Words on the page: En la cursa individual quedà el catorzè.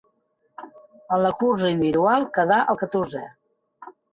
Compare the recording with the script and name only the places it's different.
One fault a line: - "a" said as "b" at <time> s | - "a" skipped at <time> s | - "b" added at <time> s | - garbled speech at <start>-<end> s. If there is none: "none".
none